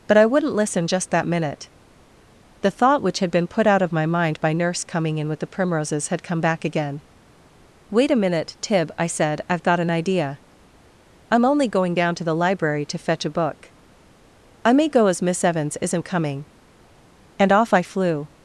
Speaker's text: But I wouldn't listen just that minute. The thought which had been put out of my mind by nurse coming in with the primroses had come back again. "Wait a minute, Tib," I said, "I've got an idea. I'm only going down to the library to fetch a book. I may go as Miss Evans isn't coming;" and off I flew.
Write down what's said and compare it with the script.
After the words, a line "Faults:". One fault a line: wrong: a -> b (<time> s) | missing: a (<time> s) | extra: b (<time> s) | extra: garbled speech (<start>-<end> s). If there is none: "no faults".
But I wouldn't listen just that minute. The thought which had been put out of my mind by nurse coming in with the primroses had come back again. "Wait a minute, Tib," I said, "I've got an idea. I'm only going down to the library to fetch a book. I may go as Miss Evans isn't coming;" and off I flew.
Faults:
no faults